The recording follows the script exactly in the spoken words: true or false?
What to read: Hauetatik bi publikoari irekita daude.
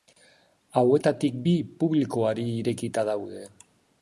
true